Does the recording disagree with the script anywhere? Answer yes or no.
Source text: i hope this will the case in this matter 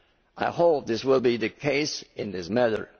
yes